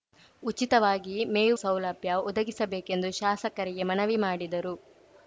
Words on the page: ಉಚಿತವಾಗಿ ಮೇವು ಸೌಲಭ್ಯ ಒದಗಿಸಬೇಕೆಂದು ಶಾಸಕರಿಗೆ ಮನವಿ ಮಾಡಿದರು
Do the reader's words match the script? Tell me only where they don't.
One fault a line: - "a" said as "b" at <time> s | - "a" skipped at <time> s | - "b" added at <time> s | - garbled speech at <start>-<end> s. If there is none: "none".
none